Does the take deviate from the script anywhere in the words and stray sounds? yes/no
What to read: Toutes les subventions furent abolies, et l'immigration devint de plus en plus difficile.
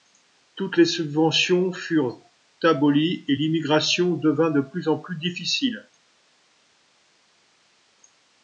no